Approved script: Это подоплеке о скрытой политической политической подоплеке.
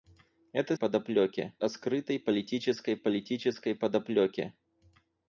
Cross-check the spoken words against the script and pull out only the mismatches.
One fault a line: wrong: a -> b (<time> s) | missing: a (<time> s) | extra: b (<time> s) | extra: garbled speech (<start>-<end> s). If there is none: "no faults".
no faults